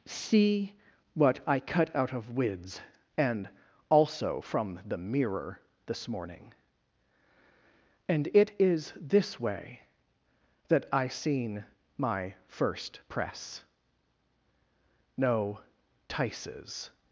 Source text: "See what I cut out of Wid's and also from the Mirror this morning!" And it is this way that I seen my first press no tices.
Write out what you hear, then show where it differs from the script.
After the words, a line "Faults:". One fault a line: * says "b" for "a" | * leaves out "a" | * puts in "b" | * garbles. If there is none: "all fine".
"See what I cut out of Wid's and also from the Mirror this morning!" And it is this way that I seen my first press no tices.
Faults:
all fine